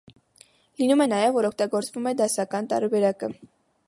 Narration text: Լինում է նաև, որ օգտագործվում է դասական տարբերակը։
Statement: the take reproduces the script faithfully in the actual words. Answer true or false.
true